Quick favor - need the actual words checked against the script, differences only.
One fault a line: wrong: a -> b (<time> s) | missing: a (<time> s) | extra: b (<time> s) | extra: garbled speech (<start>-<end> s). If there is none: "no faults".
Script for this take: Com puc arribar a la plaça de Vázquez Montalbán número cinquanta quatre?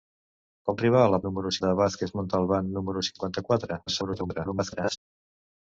missing: puc (0.8 s)
wrong: plaça -> número (1.3 s)
extra: garbled speech (3.9-5.0 s)